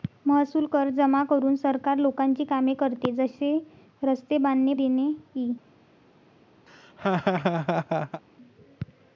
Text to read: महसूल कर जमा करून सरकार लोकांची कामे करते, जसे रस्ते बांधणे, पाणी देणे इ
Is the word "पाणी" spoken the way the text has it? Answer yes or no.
no